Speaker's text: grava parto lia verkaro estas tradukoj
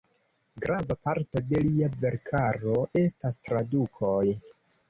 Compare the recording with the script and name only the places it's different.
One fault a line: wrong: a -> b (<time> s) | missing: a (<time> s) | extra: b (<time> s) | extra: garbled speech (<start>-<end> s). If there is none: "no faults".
extra: de (1.5 s)